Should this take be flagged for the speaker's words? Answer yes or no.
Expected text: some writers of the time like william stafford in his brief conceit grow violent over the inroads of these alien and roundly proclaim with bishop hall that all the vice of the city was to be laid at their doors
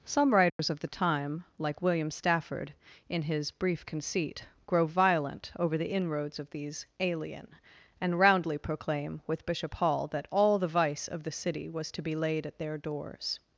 no